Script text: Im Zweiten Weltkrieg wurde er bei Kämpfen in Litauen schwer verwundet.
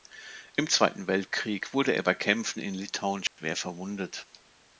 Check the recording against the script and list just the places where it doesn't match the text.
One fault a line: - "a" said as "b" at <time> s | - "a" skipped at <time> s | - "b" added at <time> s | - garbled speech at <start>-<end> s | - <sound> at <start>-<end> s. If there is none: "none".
- dropout at 3.3-3.4 s